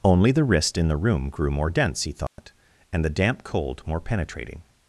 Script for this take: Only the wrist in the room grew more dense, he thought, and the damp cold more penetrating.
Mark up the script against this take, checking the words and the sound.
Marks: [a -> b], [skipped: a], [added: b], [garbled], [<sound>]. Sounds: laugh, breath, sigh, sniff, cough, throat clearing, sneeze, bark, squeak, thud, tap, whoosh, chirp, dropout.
Only the wrist in the room grew more dense, he thought, [dropout] and the damp cold more penetrating.